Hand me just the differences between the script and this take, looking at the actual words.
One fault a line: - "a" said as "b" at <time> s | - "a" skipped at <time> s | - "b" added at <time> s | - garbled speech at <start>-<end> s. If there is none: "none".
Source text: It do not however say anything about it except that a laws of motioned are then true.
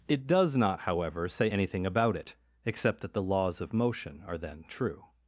- "do" said as "does" at 0.3 s
- "a" said as "the" at 3.1 s
- "motioned" said as "motion" at 3.7 s